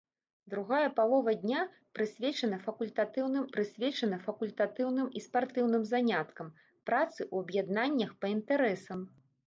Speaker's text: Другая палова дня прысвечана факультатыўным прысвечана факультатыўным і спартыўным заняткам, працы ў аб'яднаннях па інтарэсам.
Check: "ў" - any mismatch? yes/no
no